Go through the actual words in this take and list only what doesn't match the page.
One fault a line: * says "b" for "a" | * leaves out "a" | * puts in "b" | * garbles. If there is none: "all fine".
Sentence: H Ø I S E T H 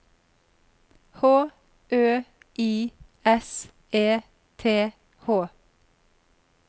all fine